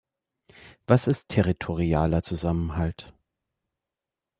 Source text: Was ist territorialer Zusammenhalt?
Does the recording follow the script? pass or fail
pass